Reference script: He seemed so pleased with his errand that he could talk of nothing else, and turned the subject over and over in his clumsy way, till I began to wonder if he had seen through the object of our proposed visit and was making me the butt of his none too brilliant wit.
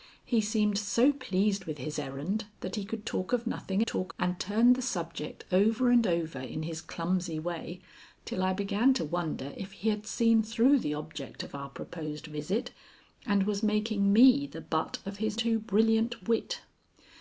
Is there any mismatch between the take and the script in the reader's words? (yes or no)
yes